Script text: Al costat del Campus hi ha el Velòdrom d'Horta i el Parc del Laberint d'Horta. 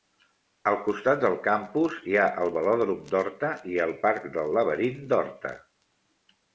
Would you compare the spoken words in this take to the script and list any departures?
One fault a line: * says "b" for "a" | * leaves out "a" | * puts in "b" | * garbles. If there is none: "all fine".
all fine